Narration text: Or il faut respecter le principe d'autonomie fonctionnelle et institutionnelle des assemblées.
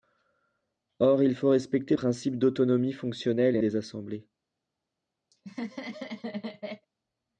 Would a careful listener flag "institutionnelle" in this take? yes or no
yes